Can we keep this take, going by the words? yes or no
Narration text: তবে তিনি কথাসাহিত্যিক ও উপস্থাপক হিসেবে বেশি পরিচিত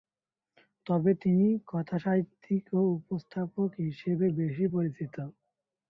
yes